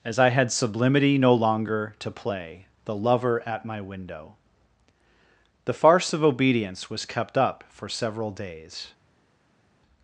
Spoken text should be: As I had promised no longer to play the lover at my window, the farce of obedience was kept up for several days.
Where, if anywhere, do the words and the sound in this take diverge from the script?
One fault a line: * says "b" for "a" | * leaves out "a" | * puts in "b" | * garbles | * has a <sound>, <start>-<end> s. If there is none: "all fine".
* says "sublimity" for "promised"